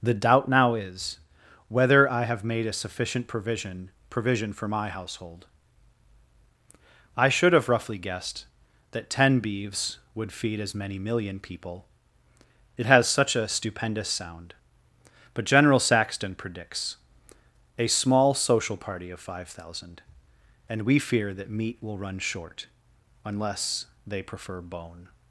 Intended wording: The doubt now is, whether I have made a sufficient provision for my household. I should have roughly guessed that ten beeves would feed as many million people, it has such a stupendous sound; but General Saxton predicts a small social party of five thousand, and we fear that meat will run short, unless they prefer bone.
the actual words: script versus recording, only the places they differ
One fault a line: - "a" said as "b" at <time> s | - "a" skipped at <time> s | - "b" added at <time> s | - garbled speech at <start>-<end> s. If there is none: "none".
- "provision" added at 4.1 s